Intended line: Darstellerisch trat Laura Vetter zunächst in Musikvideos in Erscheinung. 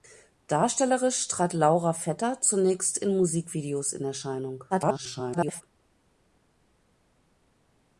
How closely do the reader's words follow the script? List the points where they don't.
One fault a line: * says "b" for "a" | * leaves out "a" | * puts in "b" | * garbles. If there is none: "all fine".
* garbles